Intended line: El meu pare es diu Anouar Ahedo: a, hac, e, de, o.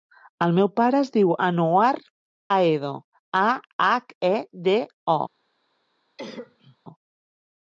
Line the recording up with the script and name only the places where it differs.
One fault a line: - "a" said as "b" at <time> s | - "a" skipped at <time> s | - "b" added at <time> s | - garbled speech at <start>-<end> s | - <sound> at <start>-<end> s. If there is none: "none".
- cough at 6.2-6.8 s